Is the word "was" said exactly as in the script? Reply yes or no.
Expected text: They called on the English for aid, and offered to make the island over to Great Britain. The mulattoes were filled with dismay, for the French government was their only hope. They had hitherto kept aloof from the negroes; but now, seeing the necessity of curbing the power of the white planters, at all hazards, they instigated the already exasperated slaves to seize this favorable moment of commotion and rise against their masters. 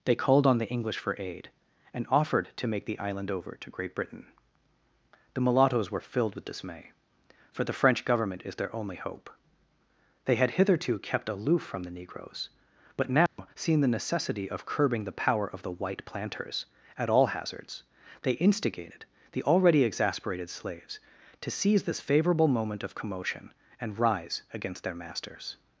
no